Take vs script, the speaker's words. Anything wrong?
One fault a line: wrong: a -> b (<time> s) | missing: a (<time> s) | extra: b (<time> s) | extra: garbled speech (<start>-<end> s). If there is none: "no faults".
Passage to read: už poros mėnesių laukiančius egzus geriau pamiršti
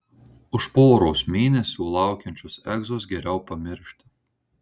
no faults